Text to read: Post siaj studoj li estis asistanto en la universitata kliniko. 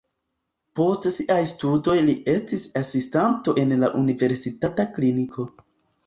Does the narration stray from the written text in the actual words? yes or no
no